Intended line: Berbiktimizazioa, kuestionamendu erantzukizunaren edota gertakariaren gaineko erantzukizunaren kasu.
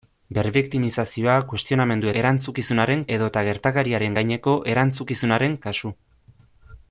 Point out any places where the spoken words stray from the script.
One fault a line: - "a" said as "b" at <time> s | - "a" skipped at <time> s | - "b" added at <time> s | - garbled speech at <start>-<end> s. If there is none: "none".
none